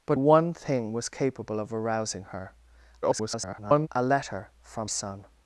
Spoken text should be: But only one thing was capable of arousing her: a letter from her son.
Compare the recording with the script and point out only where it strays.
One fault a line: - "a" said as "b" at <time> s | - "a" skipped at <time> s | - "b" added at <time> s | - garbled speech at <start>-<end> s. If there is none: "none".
- "only" skipped at 0.2 s
- garbled speech at 3.0-3.9 s
- "her" skipped at 4.9 s